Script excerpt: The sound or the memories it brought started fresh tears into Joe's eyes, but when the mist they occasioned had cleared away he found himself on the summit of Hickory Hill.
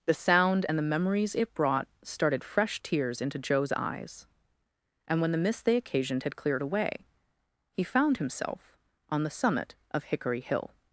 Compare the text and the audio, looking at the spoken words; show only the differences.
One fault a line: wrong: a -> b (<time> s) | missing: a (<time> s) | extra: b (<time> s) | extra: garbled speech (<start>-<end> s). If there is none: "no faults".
wrong: or -> and (0.7 s)
wrong: but -> and (5.1 s)